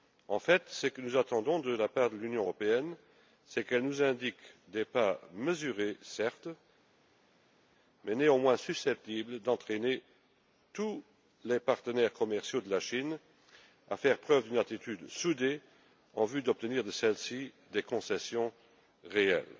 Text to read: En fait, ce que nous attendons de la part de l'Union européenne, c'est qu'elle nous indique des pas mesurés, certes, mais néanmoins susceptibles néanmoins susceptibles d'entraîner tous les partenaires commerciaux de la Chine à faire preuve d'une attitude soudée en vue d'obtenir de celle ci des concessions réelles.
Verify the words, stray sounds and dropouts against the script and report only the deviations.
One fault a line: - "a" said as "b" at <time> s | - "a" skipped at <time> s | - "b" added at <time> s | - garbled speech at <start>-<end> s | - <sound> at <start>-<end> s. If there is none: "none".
- "néanmoins susceptibles" skipped at 9.4 s